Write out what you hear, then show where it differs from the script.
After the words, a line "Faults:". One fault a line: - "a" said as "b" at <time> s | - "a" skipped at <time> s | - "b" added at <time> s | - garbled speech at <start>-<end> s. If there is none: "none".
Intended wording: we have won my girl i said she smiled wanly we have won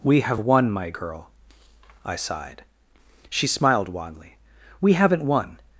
we have won my girl i sighed she smiled wanly we haven't won
Faults:
- "said" said as "sighed" at 2.2 s
- "have" said as "haven't" at 4.9 s